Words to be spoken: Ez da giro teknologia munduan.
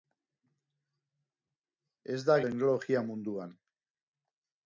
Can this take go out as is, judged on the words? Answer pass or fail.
fail